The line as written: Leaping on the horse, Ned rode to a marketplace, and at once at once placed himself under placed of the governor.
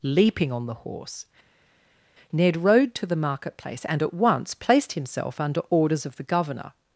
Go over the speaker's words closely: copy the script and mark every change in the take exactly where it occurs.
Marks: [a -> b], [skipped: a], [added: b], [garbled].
Leaping on the horse, Ned rode to [a -> the] marketplace, and at once [skipped: at once] placed himself under [placed -> orders] of the governor.